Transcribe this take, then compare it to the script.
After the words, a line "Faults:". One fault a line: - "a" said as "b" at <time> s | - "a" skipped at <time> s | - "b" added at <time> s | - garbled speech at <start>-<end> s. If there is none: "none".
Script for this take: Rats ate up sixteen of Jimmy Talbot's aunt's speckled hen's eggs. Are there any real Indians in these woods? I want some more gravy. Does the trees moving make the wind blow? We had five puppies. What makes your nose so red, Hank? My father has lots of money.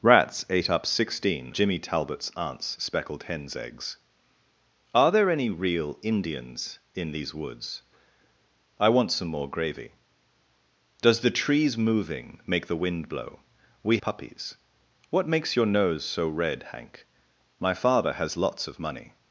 Rats ate up sixteen Jimmy Talbot's aunt's speckled hen's eggs. Are there any real Indians in these woods? I want some more gravy. Does the trees moving make the wind blow? We puppies. What makes your nose so red, Hank? My father has lots of money.
Faults:
- "of" skipped at 1.5 s
- "had five" skipped at 14.0 s